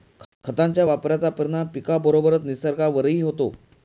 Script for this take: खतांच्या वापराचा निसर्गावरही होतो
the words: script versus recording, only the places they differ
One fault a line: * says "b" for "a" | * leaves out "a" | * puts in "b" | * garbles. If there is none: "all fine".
* puts in "परिणाम पिकाबरोबरच"